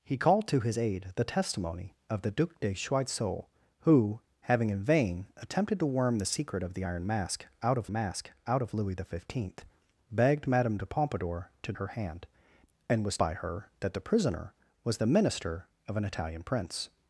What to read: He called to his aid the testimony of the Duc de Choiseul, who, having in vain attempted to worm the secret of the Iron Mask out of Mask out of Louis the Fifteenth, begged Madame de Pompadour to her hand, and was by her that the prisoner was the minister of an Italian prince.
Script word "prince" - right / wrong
right